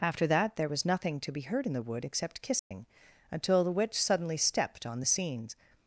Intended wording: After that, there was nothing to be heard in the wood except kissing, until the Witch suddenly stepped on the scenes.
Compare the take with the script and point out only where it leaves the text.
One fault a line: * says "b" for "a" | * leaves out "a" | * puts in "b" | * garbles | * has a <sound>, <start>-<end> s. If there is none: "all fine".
* has a dropout, 2.6-2.7 s